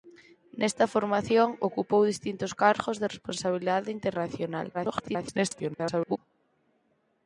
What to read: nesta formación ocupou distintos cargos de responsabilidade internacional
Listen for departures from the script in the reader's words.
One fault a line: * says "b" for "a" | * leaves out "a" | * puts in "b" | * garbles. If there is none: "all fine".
* garbles